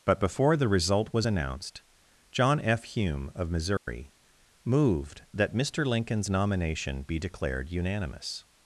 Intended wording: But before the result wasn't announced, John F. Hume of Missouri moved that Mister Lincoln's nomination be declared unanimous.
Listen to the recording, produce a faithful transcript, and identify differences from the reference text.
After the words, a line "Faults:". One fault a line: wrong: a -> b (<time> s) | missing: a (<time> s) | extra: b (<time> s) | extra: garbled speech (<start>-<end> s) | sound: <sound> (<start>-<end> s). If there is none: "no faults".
But before the result was announced, John F. Hume of Missouri moved that Mister Lincoln's nomination be declared unanimous.
Faults:
wrong: wasn't -> was (1.1 s)
sound: dropout (3.8-3.9 s)